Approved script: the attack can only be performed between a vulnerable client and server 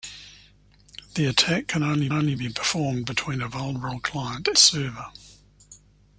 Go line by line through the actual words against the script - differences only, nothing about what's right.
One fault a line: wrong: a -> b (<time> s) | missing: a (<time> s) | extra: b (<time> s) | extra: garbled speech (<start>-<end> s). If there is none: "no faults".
extra: only (2.1 s)
missing: and (4.5 s)